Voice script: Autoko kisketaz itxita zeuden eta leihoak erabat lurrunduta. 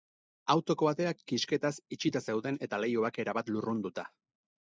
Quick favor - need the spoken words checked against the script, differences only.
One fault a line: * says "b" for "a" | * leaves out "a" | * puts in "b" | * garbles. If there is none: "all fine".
* puts in "ateak"